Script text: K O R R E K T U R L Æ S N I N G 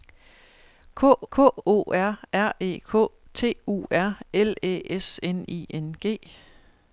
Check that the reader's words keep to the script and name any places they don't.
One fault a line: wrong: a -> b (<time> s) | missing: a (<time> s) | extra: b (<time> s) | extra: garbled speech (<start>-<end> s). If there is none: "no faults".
extra: k (1.3 s)